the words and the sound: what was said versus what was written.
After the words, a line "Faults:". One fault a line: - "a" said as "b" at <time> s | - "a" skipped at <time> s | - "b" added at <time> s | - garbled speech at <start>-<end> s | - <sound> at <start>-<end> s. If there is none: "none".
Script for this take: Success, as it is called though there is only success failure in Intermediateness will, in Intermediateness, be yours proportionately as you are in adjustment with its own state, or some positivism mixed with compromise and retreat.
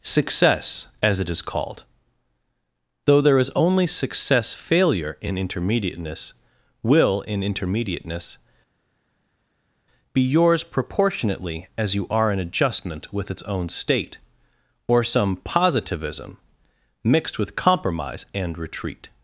Success, as it is called though there is only success failure in Intermediateness will, in Intermediateness, be yours proportionately as you are in adjustment with its own state, or some positivism mixed with compromise and retreat.
Faults:
none